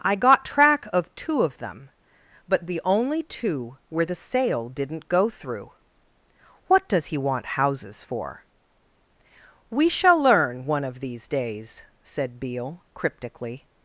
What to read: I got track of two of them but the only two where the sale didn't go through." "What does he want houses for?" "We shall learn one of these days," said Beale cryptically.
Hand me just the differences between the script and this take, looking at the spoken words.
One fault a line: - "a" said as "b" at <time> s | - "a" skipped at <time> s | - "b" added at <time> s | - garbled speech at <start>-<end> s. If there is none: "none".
none